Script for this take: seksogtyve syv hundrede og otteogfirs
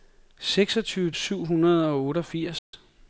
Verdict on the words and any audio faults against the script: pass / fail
fail